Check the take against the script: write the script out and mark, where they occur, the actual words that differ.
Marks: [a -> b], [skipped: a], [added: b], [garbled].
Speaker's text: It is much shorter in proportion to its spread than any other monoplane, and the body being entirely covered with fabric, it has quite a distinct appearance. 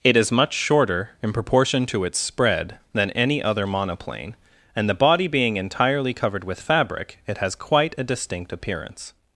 It is much shorter in proportion to its spread than any other monoplane, and the body being entirely covered with fabric, it has quite a distinct appearance.